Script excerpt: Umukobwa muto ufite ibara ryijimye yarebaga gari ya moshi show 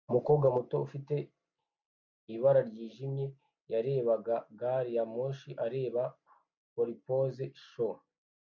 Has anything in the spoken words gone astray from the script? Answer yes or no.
yes